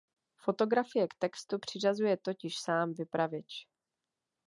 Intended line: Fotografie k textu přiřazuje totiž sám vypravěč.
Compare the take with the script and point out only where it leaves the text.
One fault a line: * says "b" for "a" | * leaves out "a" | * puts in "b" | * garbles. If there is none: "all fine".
all fine